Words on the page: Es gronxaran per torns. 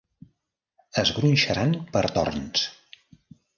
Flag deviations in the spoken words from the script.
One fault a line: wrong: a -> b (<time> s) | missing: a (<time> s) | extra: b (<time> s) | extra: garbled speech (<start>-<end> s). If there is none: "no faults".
no faults